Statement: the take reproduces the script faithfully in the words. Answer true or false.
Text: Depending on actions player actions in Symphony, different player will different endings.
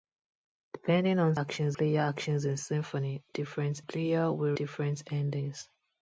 true